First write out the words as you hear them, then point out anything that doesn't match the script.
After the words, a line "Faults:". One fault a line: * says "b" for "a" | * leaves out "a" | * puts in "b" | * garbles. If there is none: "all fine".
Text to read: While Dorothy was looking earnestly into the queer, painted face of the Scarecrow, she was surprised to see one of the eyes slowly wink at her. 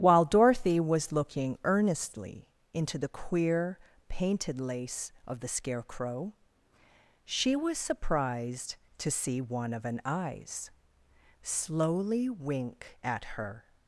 While Dorothy was looking earnestly into the queer, painted lace of the Scarecrow, she was surprised to see one of an eyes slowly wink at her.
Faults:
* says "lace" for "face"
* says "an" for "the"